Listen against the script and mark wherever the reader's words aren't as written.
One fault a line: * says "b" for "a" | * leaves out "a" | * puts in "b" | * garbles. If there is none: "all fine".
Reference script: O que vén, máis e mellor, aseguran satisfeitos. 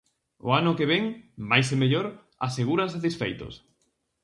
* puts in "ano"